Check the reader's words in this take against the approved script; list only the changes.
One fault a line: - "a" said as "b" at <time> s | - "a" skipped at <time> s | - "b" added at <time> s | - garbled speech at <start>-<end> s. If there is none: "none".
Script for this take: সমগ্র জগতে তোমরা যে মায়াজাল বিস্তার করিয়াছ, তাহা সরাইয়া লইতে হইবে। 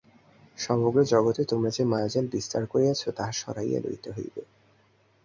none